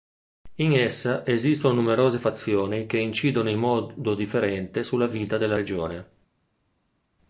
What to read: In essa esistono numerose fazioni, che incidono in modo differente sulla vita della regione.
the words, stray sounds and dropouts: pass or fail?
pass